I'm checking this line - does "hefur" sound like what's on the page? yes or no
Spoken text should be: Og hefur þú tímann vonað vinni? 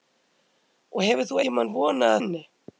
yes